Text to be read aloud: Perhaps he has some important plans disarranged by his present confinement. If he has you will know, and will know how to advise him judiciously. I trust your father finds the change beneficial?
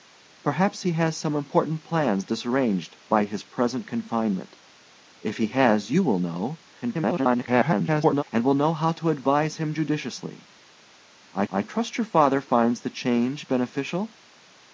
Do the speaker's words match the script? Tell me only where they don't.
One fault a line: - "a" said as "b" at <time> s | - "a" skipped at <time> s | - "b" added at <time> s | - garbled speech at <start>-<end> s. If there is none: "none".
- garbled speech at 6.8-8.2 s
- "I" added at 11.5 s